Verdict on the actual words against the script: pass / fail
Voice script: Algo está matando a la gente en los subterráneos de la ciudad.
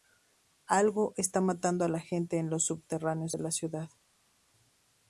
pass